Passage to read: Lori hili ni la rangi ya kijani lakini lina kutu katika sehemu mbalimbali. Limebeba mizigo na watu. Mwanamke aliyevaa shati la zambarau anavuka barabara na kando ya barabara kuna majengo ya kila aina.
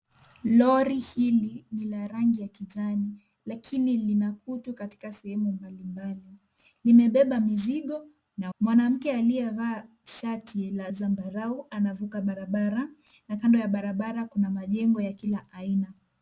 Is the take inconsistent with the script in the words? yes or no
yes